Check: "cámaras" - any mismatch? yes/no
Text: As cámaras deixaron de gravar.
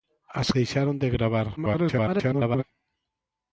yes